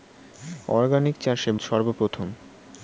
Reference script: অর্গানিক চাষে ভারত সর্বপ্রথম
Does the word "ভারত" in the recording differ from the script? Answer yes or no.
yes